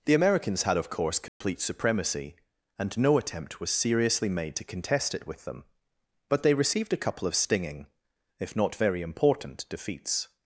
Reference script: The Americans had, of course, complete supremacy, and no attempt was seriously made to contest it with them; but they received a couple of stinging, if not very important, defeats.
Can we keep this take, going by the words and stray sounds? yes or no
no